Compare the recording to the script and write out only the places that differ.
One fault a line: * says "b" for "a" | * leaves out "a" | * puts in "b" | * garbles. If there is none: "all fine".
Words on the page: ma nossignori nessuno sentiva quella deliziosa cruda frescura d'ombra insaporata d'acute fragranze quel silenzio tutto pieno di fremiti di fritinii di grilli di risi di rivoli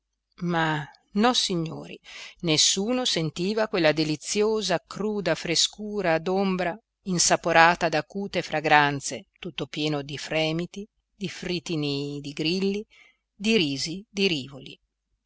* leaves out "quel silenzio"